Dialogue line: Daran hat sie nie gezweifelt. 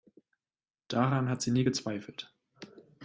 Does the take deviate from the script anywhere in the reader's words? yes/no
no